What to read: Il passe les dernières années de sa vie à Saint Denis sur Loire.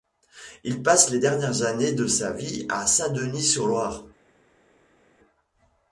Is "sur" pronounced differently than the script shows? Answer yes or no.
no